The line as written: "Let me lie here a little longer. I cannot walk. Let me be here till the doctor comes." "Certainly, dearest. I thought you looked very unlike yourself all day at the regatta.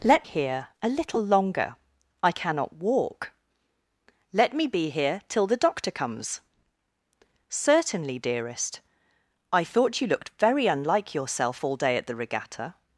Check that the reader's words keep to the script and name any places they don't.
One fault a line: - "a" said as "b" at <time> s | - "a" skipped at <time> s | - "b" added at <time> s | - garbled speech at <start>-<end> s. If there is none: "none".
- "me lie" skipped at 0.2 s